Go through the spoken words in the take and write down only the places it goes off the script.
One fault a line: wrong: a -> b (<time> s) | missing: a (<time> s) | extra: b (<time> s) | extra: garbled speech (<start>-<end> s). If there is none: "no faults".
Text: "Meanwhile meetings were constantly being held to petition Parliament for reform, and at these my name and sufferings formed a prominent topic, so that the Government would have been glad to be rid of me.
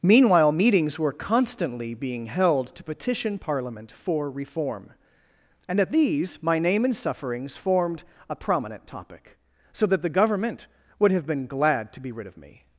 no faults